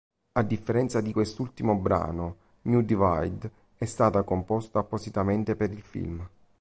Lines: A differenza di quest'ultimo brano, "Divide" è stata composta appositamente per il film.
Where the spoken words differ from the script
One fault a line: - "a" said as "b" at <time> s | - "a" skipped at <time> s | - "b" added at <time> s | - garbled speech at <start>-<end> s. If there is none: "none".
- "New" added at 2.6 s